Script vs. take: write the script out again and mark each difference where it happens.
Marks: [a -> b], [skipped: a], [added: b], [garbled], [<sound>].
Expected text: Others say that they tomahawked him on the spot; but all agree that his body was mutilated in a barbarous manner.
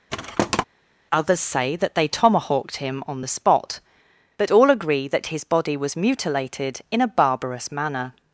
[thud] Others say that they tomahawked him on the spot; but all agree that his body was mutilated in a barbarous manner.